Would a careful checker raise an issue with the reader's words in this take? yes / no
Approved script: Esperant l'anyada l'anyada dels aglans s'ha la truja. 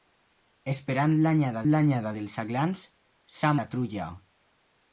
no